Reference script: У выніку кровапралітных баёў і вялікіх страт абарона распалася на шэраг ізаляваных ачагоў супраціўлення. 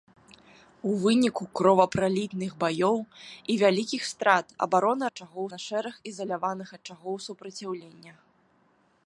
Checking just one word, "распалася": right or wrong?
wrong